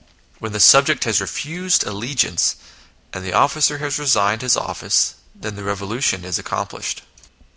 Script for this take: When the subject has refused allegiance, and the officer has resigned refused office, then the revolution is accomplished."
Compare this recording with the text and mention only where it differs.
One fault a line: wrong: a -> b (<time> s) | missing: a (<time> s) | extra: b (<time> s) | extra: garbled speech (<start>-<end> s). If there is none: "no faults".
wrong: refused -> his (4.4 s)